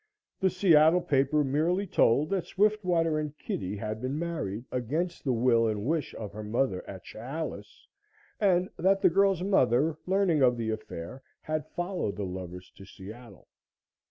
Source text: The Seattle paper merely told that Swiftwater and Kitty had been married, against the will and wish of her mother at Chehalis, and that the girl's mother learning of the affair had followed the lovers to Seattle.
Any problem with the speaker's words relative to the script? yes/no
no